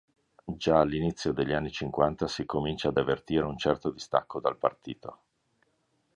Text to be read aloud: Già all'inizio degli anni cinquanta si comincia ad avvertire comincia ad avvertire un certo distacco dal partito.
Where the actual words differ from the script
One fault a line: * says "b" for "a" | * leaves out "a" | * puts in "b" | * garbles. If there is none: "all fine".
* leaves out "comincia ad avvertire"